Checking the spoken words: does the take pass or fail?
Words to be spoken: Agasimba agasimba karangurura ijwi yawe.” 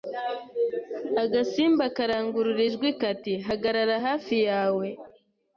fail